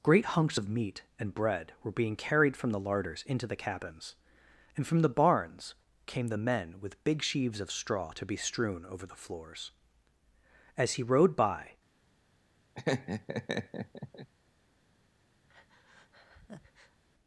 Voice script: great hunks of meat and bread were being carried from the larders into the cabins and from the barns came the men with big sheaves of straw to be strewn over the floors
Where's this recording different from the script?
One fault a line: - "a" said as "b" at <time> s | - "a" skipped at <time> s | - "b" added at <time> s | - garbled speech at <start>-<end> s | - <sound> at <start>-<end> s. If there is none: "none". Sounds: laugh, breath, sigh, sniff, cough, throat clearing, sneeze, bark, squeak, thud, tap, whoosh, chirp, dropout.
- "as he rode by" added at 10.8 s
- laugh at 12.7-14.3 s
- breath at 15.5-17.0 s